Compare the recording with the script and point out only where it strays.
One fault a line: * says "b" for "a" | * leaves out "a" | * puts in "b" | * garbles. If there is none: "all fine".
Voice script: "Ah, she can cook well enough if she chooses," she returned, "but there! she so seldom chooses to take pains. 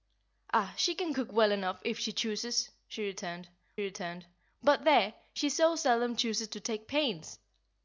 * puts in "returned"